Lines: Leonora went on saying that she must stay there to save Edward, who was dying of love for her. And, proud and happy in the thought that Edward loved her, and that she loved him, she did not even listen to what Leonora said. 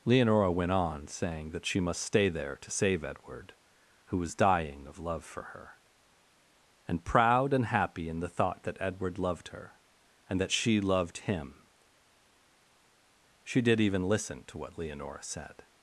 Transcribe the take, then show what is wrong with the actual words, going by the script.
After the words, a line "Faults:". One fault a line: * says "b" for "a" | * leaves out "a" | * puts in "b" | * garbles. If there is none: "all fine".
Leonora went on saying that she must stay there to save Edward, who was dying of love for her. And, proud and happy in the thought that Edward loved her, and that she loved him, she did even listen to what Leonora said.
Faults:
* leaves out "not"